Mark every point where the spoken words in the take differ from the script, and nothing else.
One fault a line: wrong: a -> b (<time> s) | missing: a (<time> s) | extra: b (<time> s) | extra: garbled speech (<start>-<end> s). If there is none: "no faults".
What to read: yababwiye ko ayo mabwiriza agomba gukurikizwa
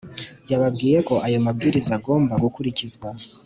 no faults